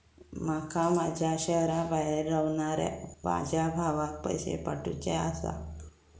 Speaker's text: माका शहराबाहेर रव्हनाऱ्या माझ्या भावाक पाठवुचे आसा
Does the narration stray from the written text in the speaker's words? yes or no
yes